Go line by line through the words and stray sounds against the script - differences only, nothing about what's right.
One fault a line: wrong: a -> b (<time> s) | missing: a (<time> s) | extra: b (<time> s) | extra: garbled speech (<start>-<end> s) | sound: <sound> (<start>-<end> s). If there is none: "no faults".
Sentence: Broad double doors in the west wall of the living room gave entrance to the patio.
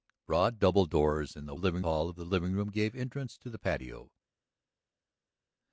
wrong: west -> living (1.6 s)